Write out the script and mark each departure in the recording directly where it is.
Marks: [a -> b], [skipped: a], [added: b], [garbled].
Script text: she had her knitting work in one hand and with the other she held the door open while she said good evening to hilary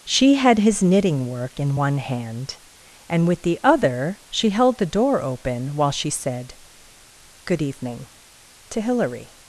she had [her -> his] knitting work in one hand and with the other she held the door open while she said good evening to hilary